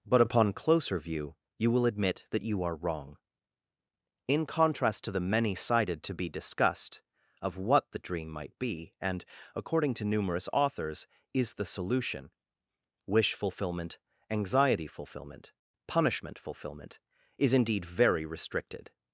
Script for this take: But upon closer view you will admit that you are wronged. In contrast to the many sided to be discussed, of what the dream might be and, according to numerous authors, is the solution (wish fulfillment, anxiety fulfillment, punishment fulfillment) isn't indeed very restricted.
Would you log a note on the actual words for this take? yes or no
yes